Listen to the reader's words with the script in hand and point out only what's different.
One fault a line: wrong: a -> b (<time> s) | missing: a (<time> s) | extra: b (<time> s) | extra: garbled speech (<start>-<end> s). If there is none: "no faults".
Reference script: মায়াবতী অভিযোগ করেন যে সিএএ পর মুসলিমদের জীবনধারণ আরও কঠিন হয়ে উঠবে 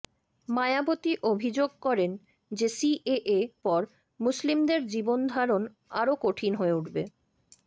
no faults